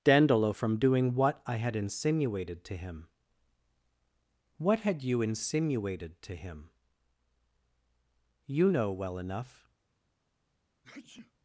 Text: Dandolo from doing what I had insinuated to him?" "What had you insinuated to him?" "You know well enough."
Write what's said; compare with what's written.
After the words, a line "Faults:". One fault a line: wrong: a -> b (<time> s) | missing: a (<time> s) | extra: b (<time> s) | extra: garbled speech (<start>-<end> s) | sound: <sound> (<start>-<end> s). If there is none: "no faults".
Dandolo from doing what I had insinuated to him?" "What had you insinuated to him?" "You know well enough."
Faults:
sound: sneeze (10.8-11.3 s)